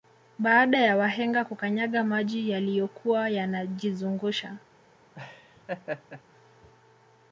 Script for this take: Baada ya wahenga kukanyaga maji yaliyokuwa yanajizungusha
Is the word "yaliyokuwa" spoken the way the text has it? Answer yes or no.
yes